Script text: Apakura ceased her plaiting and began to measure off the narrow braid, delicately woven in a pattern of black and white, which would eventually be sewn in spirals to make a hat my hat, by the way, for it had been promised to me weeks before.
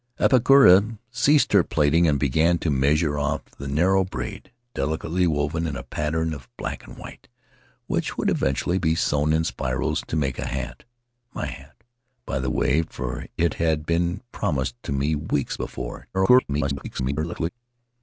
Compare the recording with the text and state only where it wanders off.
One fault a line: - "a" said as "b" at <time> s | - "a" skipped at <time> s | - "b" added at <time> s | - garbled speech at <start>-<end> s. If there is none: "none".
- garbled speech at 16.1-17.5 s